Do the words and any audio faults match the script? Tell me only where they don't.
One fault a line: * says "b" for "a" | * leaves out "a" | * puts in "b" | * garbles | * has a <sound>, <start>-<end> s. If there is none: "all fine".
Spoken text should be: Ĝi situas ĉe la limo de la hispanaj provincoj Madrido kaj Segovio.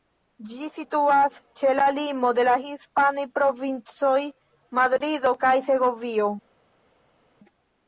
all fine